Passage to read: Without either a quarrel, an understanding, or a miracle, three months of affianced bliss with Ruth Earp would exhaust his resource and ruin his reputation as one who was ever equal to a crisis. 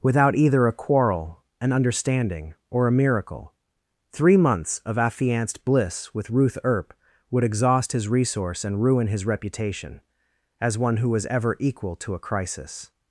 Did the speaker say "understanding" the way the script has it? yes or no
yes